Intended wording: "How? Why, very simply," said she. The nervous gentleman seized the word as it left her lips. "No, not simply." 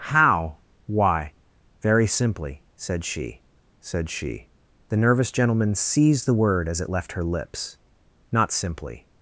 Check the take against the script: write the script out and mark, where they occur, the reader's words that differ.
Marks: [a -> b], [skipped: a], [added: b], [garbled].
"How? Why, very simply," said she. [added: said she] The nervous gentleman seized the word as it left her lips. [skipped: "No,] not simply."